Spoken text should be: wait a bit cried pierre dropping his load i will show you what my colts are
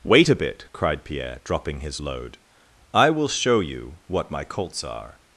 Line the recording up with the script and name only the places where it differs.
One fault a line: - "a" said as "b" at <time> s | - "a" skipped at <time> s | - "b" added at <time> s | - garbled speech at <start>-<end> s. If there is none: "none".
none